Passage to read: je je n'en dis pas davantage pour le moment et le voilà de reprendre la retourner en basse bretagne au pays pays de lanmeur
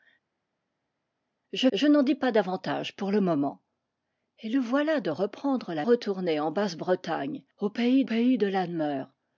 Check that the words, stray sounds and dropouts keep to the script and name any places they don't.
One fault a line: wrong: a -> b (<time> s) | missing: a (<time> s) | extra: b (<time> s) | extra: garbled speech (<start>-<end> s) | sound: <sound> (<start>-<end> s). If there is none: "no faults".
no faults